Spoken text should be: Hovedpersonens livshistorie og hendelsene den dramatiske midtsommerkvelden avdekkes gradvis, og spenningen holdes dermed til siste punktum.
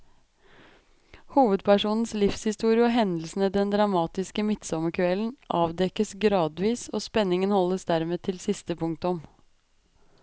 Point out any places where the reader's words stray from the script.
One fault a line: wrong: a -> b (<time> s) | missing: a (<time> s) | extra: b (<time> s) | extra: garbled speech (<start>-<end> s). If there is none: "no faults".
no faults